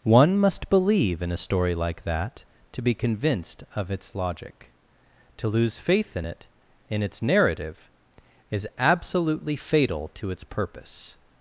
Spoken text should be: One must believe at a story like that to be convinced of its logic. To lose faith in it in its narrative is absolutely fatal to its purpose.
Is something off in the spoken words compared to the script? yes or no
yes